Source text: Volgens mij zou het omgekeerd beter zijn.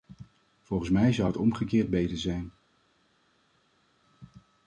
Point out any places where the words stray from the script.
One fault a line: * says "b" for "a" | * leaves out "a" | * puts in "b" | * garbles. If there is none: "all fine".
all fine